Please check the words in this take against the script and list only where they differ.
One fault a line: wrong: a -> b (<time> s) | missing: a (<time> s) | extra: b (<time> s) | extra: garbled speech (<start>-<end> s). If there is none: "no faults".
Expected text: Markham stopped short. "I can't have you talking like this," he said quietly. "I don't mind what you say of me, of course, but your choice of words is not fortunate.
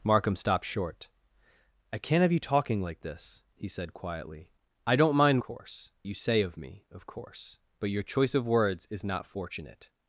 wrong: what -> course (5.4 s)